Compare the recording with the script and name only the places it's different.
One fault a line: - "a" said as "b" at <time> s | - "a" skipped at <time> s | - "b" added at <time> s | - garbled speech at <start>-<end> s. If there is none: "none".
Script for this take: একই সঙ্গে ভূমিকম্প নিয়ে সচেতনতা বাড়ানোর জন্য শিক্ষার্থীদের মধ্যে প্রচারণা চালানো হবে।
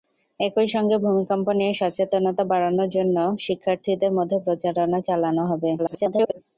- garbled speech at 5.8-6.4 s